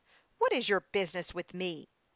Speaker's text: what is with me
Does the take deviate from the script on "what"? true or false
false